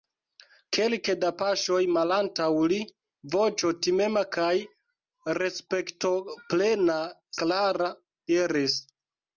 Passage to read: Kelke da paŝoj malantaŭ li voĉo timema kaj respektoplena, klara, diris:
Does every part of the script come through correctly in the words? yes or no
yes